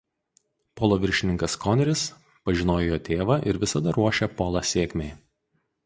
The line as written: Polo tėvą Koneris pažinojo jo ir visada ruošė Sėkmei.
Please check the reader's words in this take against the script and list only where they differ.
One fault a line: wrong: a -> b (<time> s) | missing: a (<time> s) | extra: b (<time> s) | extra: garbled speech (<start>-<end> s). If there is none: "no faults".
wrong: tėvą -> viršininkas (1.0 s)
extra: tėvą (3.1 s)
extra: Polą (4.4 s)